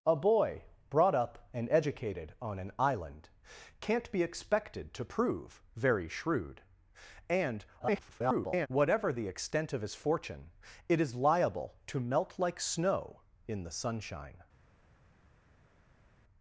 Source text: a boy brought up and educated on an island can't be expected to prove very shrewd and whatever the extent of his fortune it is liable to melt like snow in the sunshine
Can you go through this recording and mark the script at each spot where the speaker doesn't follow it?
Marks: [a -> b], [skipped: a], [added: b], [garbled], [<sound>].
a boy brought up and educated on an island can't be expected to prove very shrewd and [garbled] whatever the extent of his fortune it is liable to melt like snow in the sunshine